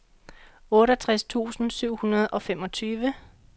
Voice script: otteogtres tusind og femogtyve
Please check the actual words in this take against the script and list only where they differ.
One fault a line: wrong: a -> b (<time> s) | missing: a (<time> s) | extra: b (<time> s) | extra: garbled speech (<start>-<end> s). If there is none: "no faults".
extra: syv hundrede (1.7 s)